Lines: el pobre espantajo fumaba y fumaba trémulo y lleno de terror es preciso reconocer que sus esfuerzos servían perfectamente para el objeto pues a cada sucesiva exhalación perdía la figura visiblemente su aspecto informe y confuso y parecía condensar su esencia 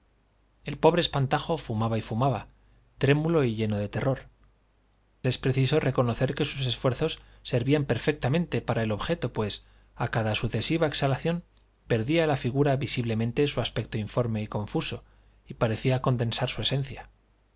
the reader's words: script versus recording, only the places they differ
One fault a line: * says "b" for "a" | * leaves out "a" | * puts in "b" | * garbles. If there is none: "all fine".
all fine